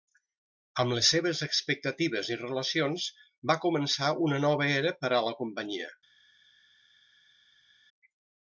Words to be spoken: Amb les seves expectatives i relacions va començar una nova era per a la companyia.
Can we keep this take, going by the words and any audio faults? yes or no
yes